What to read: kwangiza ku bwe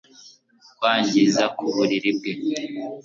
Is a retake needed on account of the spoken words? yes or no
yes